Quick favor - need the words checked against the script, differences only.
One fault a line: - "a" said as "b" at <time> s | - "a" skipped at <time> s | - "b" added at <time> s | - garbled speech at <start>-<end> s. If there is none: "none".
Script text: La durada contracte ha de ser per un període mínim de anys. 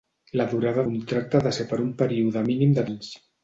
none